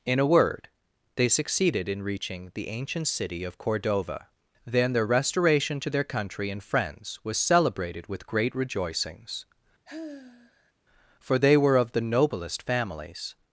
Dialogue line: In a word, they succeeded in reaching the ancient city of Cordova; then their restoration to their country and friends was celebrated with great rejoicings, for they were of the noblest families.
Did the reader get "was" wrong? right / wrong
right